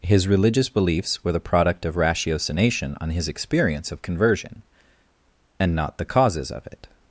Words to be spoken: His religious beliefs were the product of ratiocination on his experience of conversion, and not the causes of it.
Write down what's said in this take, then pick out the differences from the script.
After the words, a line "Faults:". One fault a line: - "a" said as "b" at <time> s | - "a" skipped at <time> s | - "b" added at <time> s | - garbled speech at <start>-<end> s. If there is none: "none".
His religious beliefs were the product of ratiocination on his experience of conversion, and not the causes of it.
Faults:
none